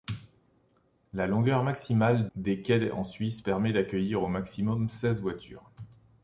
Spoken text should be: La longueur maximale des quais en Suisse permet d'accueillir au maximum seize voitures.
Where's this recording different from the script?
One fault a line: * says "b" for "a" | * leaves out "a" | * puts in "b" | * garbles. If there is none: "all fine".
all fine